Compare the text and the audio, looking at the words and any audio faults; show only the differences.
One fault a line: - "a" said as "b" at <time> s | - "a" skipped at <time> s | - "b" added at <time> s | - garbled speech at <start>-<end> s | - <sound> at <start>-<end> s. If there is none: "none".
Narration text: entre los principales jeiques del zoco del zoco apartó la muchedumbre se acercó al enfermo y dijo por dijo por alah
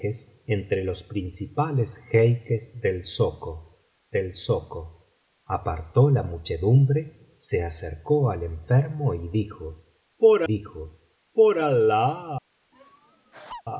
- laugh at 12.7-13.6 s